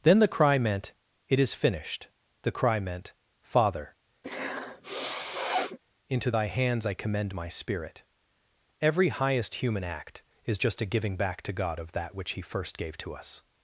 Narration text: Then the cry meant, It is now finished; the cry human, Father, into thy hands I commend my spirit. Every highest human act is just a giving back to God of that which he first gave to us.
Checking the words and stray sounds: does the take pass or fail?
fail